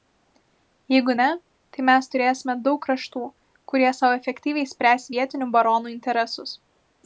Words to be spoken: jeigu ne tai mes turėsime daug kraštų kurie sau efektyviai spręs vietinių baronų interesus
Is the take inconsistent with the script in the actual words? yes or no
no